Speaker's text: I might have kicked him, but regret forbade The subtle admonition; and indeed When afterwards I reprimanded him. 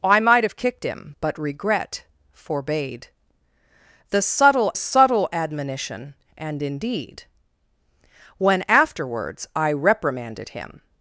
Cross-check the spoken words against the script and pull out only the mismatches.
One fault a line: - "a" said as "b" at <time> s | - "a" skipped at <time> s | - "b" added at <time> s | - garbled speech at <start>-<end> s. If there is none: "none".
- "subtle" added at 4.7 s